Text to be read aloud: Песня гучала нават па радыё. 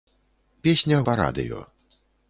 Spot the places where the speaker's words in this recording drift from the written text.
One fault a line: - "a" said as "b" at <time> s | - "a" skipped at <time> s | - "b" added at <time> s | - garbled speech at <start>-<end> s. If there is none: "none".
- "гучала нават" skipped at 1.0 s